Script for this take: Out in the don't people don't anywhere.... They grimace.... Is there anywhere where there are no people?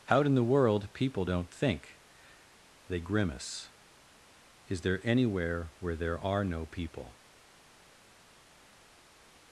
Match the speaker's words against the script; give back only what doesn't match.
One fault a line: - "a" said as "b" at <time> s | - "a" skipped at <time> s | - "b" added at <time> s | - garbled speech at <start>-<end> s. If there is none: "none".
- "don't" said as "world" at 0.4 s
- "anywhere" said as "think" at 1.5 s